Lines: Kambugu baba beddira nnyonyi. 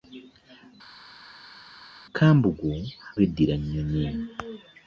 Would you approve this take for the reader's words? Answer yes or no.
no